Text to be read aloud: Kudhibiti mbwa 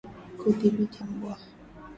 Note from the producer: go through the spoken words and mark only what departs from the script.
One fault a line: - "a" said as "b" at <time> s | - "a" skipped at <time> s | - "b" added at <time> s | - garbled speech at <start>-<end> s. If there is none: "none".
none